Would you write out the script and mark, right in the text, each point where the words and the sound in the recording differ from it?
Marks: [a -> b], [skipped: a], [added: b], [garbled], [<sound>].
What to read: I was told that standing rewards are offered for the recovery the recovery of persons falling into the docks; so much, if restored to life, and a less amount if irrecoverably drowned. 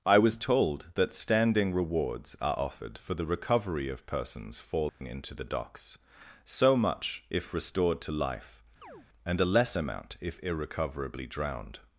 I was told that standing rewards are offered for the recovery [skipped: the recovery] of persons falling [dropout] into the docks; so much, if restored to life, [chirp] and a less amount if irrecoverably drowned.